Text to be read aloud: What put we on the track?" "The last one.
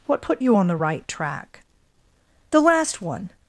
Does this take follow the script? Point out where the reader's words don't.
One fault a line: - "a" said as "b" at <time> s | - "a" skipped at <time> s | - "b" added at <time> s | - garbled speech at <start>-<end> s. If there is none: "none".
- "we" said as "you" at 0.4 s
- "right" added at 0.7 s